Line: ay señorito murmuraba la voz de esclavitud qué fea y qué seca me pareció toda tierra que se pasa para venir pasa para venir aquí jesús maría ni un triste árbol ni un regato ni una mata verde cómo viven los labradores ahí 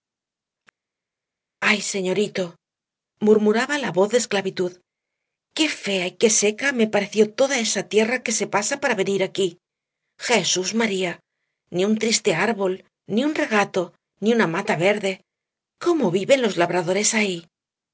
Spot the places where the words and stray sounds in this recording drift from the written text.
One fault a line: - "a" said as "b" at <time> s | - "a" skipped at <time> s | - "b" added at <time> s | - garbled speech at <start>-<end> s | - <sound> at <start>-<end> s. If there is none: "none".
- "esa" added at 7.7 s
- "pasa para venir" skipped at 9.2 s